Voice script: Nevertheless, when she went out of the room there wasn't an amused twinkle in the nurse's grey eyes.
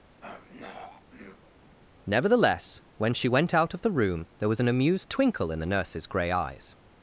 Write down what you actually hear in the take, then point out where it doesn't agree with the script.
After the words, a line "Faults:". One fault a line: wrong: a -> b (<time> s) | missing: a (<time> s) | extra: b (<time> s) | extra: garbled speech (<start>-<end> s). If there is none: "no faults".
Nevertheless, when she went out of the room there was an amused twinkle in the nurse's grey eyes.
Faults:
wrong: wasn't -> was (4.5 s)